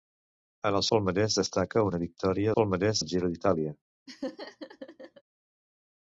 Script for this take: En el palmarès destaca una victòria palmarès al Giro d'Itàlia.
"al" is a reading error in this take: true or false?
false